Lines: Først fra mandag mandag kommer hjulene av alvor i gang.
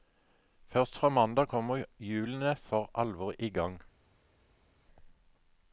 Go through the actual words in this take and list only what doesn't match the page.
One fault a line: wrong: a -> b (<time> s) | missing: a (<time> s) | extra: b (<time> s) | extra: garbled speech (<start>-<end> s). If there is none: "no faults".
missing: mandag (1.5 s)
wrong: av -> for (2.6 s)